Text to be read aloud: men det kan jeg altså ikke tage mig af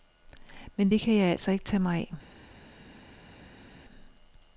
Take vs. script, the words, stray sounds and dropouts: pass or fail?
pass